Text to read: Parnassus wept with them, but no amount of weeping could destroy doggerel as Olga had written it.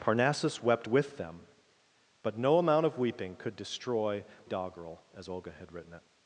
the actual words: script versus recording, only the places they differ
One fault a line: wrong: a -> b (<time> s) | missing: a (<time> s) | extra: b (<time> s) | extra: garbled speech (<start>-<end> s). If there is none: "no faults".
no faults